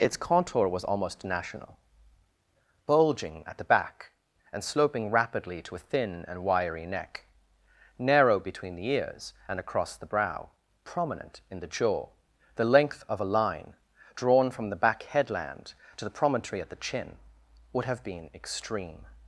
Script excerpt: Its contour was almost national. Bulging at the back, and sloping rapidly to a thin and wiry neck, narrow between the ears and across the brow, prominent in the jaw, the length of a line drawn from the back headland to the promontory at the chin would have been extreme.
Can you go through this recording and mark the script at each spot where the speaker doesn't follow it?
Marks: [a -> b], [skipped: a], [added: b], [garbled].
Its contour was almost national. Bulging at the back, and sloping rapidly to a thin and wiry neck, narrow between the ears and across the brow, prominent in the jaw, the length of a line drawn from the back headland to the promontory at the chin would have been extreme.